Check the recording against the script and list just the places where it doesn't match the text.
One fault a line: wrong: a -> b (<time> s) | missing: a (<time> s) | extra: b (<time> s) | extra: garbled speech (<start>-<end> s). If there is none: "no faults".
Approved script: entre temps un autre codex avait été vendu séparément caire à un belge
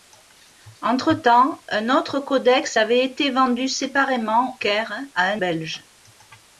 no faults